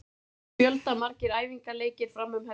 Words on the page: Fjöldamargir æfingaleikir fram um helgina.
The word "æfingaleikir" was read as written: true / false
true